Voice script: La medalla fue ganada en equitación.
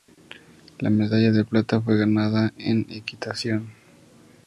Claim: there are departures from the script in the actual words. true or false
true